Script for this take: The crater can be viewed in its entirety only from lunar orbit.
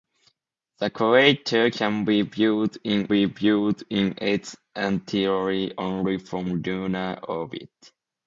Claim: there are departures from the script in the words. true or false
true